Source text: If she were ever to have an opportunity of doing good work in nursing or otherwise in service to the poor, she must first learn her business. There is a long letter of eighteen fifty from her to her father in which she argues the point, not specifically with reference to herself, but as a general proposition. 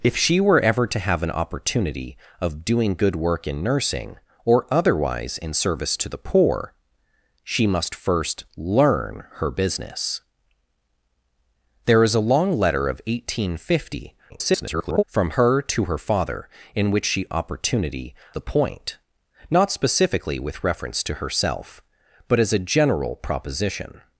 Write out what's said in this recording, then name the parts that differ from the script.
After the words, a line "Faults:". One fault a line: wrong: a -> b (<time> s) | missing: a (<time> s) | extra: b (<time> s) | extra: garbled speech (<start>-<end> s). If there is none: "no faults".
If she were ever to have an opportunity of doing good work in nursing or otherwise in service to the poor, she must first learn her business. There is a long letter of eighteen fifty [garbled] from her to her father in which she opportunity the point, not specifically with reference to herself, but as a general proposition.
Faults:
extra: garbled speech (14.3-15.0 s)
wrong: argues -> opportunity (17.3 s)